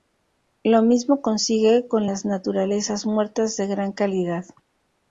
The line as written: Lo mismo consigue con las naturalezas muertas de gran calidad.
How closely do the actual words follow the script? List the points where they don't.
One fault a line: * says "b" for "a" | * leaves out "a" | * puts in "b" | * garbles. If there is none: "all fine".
all fine